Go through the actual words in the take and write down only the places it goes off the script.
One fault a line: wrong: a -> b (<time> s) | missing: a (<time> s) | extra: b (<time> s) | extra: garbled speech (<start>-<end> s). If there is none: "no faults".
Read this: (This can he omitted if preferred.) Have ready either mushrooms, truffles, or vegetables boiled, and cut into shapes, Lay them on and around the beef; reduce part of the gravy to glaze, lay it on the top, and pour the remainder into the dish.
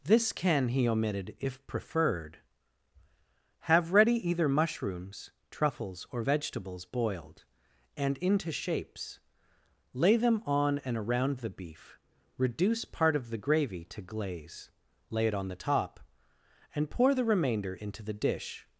missing: cut (8.2 s)